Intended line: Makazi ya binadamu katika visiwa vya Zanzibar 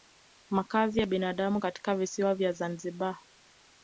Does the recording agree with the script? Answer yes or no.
yes